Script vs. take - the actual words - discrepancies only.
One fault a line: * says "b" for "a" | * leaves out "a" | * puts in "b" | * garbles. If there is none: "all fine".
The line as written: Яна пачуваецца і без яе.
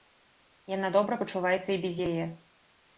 * puts in "добра"